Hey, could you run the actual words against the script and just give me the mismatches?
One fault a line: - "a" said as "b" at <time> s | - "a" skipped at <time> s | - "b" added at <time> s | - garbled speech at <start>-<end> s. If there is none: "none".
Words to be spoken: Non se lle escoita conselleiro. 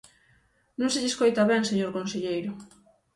- "ben señor" added at 1.5 s